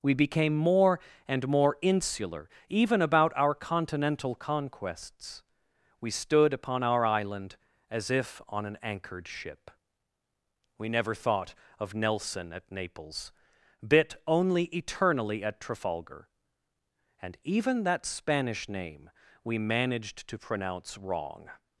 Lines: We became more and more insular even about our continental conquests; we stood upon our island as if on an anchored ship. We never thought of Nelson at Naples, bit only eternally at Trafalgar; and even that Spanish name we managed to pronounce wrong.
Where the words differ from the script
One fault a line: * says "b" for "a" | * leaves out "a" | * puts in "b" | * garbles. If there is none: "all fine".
all fine